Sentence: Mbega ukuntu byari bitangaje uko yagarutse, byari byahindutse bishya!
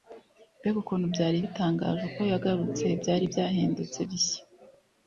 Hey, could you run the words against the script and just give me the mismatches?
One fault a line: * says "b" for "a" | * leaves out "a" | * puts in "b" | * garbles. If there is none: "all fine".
all fine